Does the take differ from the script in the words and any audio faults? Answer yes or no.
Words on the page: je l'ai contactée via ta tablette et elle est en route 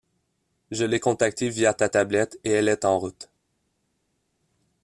no